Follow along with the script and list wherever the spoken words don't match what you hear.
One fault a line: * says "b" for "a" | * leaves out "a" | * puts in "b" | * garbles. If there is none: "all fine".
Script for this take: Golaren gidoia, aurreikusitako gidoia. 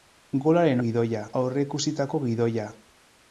all fine